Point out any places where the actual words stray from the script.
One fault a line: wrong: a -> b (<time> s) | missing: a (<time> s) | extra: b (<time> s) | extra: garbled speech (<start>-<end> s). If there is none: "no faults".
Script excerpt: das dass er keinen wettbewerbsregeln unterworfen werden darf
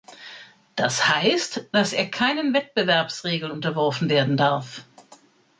extra: heißt (1.1 s)